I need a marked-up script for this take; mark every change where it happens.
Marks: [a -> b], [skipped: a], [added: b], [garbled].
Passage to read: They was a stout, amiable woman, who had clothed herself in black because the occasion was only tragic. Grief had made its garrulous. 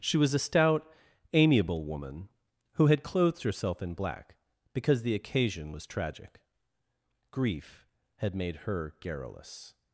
[They -> She] was a stout, amiable woman, who had clothed herself in black because the occasion was [skipped: only] tragic. Grief had made [its -> her] garrulous.